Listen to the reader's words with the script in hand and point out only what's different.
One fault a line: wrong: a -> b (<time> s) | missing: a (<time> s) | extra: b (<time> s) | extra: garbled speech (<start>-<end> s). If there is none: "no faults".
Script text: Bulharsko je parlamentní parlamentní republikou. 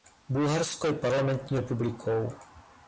missing: parlamentní (1.6 s)